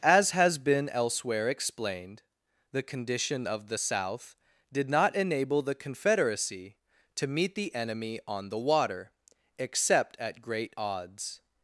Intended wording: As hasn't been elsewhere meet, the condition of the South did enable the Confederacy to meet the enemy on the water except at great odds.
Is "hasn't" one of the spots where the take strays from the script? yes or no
yes